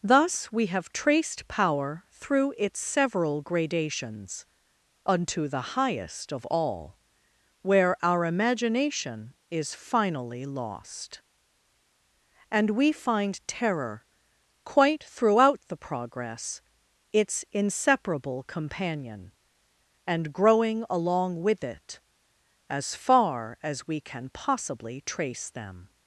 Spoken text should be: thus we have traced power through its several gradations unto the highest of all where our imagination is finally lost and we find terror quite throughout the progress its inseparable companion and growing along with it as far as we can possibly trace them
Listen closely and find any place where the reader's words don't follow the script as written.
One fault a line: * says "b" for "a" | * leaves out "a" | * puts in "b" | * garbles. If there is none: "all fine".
all fine